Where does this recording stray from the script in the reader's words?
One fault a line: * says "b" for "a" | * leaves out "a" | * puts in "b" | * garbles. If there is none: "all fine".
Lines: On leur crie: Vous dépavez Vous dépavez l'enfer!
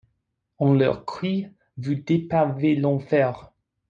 * leaves out "Vous dépavez"